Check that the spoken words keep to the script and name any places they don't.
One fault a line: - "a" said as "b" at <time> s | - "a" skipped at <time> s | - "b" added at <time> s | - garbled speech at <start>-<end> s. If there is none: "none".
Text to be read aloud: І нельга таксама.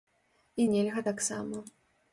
none